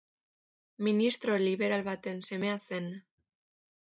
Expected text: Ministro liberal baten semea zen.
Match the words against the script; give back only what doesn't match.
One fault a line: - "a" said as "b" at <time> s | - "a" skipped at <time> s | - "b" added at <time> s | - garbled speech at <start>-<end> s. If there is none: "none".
none